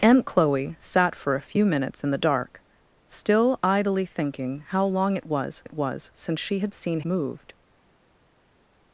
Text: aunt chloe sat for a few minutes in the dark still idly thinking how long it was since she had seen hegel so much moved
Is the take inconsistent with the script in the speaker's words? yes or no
yes